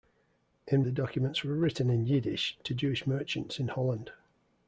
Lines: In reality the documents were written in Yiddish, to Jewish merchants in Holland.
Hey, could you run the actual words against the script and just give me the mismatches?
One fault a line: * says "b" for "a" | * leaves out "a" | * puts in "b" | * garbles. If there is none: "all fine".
* leaves out "reality"